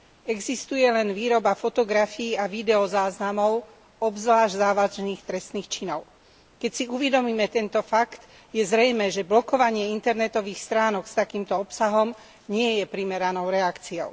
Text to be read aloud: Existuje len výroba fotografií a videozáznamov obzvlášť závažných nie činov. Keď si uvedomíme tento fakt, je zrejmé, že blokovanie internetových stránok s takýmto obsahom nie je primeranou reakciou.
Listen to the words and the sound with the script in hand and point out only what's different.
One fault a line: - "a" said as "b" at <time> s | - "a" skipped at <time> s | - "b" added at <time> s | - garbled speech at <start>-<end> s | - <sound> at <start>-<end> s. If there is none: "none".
- "nie" said as "trestných" at 5.2 s